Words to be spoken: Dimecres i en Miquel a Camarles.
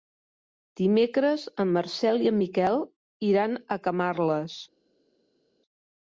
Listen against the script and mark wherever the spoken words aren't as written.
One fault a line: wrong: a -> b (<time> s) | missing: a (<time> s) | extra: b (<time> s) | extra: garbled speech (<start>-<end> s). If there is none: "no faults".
extra: en Marcel (1.6 s)
extra: iran (3.3 s)